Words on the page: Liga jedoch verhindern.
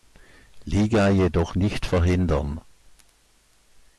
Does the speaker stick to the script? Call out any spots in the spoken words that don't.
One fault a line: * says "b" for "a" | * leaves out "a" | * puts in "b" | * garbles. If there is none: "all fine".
* puts in "nicht"